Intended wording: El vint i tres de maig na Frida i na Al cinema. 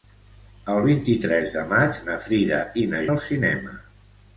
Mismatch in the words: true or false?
false